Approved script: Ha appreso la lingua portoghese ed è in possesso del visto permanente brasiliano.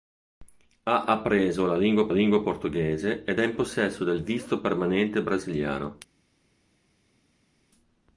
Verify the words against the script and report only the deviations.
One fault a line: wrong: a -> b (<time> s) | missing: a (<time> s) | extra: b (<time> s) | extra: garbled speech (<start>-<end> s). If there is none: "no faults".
extra: lingua (2.1 s)